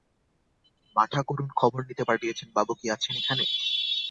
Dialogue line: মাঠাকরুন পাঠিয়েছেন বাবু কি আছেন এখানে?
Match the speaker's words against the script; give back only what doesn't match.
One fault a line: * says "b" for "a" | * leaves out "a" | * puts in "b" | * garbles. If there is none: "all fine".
* puts in "খবর নিতে"